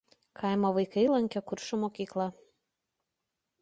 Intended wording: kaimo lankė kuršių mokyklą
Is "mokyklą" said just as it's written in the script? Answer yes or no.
yes